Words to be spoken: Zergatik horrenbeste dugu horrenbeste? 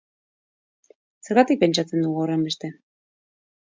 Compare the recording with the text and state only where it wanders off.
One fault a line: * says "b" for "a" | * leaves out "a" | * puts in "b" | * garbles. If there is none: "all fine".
* says "pentsatzen" for "horrenbeste"